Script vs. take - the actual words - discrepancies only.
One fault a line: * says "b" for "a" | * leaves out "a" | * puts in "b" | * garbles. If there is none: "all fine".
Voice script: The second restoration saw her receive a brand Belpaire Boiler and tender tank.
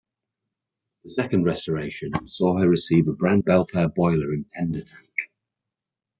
all fine